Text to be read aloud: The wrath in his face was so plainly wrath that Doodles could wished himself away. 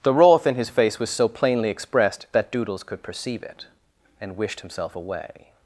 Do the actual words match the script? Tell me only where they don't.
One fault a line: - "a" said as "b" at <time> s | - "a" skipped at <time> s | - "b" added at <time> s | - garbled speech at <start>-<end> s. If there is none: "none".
- "wrath" said as "expressed" at 1.7 s
- "perceive it and" added at 3.0 s